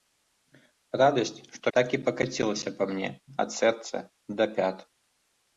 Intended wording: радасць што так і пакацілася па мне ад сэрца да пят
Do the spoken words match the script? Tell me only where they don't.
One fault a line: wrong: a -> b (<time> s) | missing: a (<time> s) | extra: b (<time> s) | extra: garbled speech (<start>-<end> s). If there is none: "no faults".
no faults